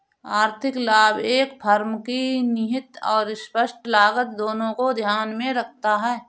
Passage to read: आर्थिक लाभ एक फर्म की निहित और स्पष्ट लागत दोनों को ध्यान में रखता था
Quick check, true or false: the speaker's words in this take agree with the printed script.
false